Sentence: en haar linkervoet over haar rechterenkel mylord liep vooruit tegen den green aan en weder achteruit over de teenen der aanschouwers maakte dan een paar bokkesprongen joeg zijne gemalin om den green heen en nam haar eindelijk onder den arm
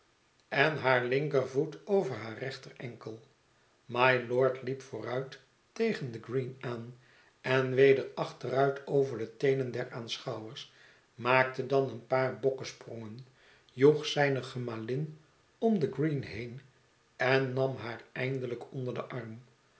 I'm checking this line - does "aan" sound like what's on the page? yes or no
yes